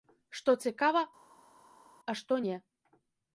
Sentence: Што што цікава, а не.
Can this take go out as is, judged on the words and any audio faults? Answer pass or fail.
fail